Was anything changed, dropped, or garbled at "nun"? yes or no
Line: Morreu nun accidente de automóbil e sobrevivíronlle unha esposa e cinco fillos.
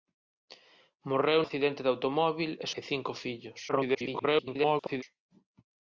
yes